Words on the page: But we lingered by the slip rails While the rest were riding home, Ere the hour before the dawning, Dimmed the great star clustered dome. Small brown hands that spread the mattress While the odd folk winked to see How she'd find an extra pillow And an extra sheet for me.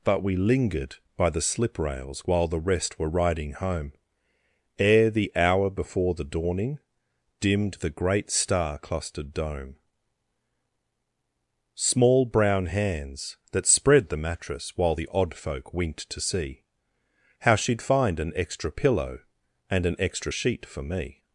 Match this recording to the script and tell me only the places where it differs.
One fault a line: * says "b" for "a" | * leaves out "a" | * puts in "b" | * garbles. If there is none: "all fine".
all fine